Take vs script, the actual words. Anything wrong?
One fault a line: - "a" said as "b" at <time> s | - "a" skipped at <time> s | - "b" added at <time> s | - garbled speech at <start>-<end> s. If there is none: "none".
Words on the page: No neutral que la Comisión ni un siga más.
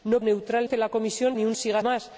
none